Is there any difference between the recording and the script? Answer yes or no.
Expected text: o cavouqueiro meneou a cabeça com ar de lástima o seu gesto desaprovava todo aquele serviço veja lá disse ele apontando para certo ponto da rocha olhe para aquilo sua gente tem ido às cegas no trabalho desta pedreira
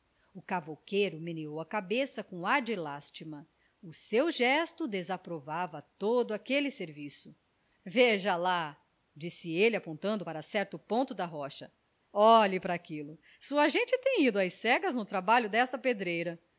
no